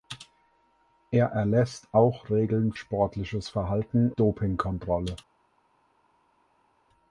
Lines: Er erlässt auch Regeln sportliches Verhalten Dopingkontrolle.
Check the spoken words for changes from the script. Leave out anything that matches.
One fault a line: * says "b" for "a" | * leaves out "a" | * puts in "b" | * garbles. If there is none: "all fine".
all fine